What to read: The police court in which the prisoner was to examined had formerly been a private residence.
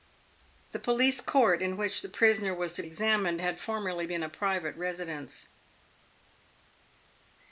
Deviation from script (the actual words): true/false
false